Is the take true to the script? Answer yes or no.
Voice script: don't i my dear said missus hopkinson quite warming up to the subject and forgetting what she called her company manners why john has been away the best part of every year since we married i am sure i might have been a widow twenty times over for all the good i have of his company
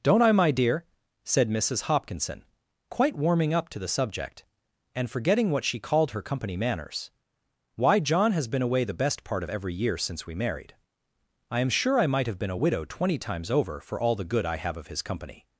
yes